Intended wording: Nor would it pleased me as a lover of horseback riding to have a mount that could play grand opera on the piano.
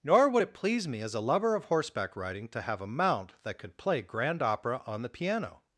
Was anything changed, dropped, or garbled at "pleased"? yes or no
yes